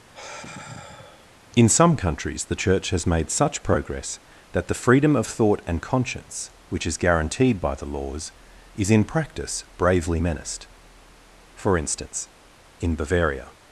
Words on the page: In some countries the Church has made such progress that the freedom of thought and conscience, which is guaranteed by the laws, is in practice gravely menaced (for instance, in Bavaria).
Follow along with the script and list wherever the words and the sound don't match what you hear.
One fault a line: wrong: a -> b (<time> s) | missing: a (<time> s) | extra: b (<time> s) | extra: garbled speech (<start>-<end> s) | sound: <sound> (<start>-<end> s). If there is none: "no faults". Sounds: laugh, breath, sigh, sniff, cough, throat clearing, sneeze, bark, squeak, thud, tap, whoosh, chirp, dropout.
sound: sigh (0.1-1.4 s)
wrong: gravely -> bravely (9.8 s)